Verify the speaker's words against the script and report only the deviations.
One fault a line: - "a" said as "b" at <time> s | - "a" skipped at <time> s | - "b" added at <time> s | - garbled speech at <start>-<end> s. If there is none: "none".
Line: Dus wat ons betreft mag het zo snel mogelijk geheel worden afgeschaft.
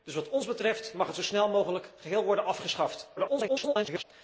- garbled speech at 3.2-4.0 s